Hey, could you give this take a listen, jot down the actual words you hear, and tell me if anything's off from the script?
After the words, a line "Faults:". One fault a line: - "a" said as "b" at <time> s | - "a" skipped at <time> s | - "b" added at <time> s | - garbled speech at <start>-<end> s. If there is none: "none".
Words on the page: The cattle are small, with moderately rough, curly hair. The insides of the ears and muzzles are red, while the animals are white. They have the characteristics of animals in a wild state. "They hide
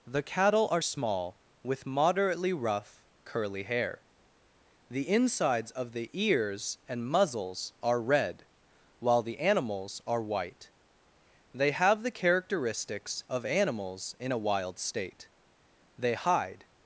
The cattle are small, with moderately rough, curly hair. The insides of the ears and muzzles are red, while the animals are white. They have the characteristics of animals in a wild state. "They hide
Faults:
none